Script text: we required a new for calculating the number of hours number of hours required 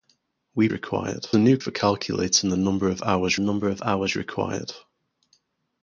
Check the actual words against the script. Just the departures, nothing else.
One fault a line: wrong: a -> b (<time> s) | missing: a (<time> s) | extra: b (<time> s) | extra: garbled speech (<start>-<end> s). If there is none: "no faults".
no faults